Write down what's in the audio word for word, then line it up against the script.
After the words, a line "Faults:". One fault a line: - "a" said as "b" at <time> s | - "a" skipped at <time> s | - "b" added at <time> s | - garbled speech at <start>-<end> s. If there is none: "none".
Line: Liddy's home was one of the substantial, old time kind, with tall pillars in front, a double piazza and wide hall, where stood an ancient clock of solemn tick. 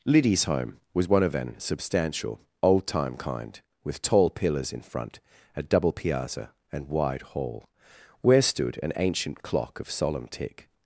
Liddy's home was one of an substantial, old time kind, with tall pillars in front, a double piazza and wide hall, where stood an ancient clock of solemn tick.
Faults:
- "the" said as "an" at 1.4 s